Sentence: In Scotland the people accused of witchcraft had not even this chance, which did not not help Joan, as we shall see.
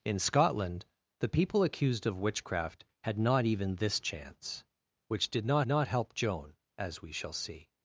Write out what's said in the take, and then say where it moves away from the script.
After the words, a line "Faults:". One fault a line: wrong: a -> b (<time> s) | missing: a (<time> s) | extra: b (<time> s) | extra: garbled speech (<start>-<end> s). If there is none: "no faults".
In Scotland the people accused of witchcraft had not even this chance, which did not not help Joan, as we shall see.
Faults:
no faults